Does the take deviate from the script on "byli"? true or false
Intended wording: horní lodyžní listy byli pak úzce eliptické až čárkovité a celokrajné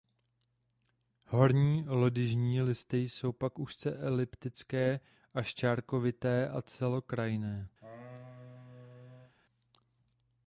true